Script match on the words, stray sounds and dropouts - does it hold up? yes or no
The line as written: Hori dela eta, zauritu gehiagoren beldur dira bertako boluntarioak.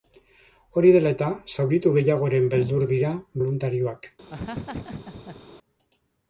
no